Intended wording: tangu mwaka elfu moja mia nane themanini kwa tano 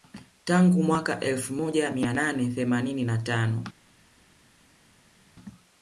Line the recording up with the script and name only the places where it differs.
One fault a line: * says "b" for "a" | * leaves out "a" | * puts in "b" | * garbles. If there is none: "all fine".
* says "na" for "kwa"